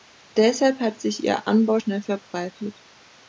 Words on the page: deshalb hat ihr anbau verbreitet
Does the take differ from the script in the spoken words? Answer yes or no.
yes